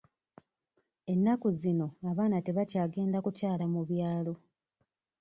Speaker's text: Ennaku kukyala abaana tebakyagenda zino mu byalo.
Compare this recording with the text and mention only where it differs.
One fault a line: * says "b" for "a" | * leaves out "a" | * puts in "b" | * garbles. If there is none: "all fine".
* says "zino" for "kukyala"
* says "kukyala" for "zino"